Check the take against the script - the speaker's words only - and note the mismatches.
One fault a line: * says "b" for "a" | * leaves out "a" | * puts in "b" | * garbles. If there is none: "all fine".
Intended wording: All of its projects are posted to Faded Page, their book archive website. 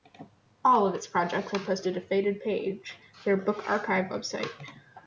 all fine